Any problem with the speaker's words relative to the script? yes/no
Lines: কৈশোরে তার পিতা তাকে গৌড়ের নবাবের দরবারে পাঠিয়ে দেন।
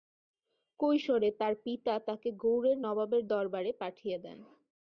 no